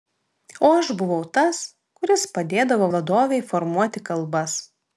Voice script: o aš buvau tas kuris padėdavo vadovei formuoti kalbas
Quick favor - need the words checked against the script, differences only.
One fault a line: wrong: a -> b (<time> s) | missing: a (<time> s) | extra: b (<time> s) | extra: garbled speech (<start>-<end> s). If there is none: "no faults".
no faults